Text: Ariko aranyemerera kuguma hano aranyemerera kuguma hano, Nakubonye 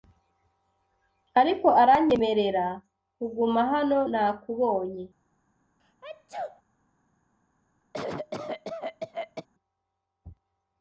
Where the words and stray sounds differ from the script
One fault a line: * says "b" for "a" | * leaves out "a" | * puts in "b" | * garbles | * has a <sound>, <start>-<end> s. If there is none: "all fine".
* leaves out "aranyemerera kuguma hano"
* has a sneeze, 5.8-6.6 s
* has a cough, 7.9-9.5 s